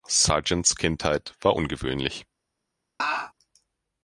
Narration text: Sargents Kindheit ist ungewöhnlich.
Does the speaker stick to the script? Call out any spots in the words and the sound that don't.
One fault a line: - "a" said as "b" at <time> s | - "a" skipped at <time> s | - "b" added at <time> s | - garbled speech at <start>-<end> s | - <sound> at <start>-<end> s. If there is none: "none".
- "ist" said as "war" at 1.4 s
- laugh at 3.0-3.3 s